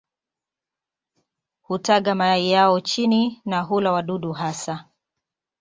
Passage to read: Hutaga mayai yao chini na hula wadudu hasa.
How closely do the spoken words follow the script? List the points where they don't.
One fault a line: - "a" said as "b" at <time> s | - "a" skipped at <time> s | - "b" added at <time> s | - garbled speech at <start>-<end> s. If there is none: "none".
none